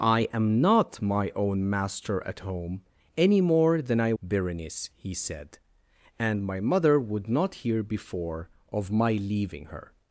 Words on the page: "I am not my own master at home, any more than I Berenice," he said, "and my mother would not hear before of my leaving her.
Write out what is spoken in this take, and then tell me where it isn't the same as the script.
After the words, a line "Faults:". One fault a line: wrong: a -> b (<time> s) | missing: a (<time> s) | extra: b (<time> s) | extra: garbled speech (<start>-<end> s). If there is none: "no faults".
"I am not my own master at home, any more than I Berenice," he said, "and my mother would not hear before of my leaving her.
Faults:
no faults